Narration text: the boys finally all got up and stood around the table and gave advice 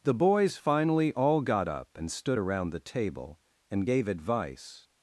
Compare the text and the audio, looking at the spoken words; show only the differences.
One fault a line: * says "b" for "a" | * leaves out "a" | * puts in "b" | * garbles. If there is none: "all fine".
all fine